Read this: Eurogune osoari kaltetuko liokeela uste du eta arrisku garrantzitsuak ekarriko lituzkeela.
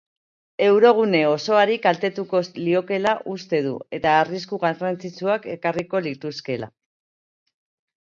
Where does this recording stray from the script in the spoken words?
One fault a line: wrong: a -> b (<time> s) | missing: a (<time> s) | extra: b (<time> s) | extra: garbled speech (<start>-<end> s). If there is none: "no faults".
no faults